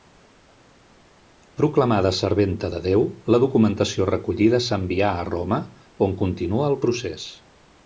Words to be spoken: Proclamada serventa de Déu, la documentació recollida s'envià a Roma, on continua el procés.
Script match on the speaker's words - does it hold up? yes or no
yes